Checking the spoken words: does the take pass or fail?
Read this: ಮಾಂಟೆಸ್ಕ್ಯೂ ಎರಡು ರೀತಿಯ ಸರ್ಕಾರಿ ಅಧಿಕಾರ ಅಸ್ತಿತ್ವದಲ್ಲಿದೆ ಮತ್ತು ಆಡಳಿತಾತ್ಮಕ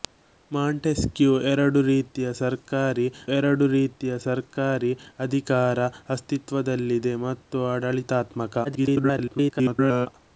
fail